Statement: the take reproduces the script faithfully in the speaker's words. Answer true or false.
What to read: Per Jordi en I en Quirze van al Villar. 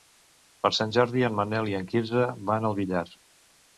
false